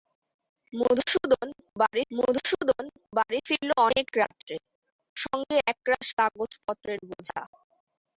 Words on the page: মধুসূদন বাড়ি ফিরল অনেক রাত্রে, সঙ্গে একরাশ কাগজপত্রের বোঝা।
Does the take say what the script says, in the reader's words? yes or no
no